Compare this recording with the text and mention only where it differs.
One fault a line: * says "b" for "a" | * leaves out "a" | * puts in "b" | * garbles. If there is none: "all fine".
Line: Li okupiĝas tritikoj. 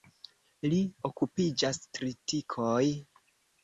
all fine